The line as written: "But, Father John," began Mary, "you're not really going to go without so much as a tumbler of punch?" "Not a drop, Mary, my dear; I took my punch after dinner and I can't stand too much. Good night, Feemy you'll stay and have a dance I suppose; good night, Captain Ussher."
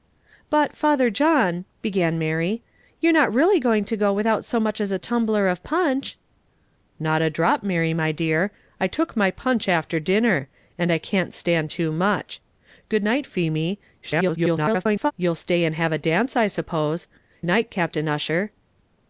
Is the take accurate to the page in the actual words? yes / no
no